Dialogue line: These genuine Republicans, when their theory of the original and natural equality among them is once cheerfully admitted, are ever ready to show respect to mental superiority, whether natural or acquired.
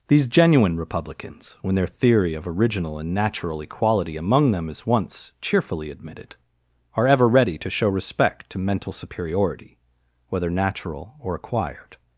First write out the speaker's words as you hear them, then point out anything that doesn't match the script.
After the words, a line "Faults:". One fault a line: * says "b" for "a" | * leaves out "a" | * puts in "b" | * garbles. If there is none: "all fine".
These genuine Republicans, when their theory of original and natural equality among them is once cheerfully admitted, are ever ready to show respect to mental superiority, whether natural or acquired.
Faults:
* leaves out "the"